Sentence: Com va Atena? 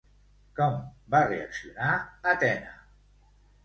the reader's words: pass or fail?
fail